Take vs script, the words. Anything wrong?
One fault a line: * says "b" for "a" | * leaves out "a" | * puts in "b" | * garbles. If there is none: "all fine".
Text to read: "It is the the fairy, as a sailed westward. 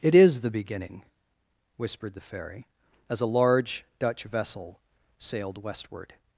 * puts in "beginning whispered"
* puts in "large Dutch vessel"